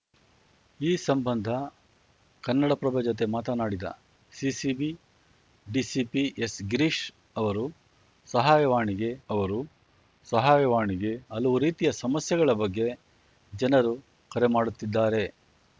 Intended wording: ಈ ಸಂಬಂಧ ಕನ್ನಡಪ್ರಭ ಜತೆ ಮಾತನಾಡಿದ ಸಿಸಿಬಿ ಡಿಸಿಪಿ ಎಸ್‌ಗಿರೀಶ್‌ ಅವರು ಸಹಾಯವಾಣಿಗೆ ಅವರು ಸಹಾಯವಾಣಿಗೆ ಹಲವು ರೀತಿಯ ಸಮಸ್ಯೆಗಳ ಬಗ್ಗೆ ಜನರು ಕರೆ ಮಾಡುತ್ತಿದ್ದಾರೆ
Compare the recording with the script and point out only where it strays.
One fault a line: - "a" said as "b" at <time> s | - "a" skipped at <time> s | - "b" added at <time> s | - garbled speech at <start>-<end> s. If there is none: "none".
none